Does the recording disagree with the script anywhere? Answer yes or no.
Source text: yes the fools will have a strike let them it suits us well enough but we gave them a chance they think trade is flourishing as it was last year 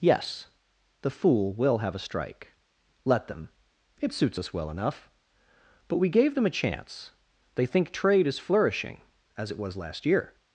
yes